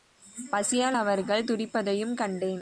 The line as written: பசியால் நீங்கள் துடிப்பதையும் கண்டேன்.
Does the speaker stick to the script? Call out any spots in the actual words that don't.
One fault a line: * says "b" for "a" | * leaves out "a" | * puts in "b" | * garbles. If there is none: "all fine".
* says "அவர்கள்" for "நீங்கள்"